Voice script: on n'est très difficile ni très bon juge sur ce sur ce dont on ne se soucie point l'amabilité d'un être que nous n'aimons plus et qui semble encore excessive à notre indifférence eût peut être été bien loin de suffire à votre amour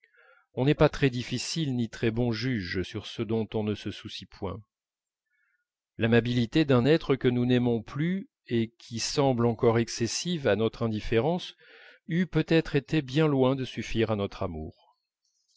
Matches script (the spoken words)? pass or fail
fail